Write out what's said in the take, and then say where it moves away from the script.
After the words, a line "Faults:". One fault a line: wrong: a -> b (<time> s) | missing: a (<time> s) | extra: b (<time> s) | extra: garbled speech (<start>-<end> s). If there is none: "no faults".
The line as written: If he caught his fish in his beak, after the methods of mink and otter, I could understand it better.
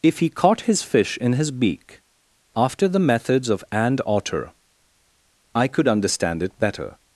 If he caught his fish in his beak, after the methods of and otter, I could understand it better.
Faults:
missing: mink (3.6 s)